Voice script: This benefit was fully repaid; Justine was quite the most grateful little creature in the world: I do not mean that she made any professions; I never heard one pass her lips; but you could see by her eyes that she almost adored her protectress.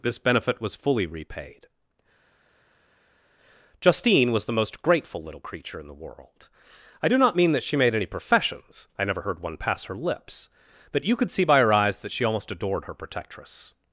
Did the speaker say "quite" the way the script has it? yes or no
no